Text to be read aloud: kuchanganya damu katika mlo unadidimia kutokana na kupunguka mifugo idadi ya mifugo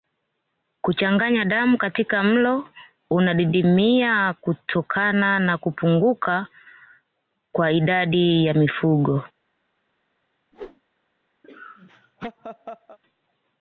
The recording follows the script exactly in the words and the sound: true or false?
false